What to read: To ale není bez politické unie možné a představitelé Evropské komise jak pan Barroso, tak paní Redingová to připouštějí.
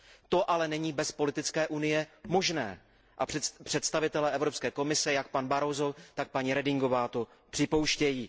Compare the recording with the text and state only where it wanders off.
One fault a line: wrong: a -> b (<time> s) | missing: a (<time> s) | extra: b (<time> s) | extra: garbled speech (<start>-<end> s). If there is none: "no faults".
no faults